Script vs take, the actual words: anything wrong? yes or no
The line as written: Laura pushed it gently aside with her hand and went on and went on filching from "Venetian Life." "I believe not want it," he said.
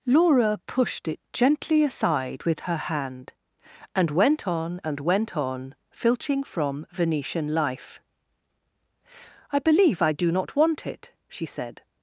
yes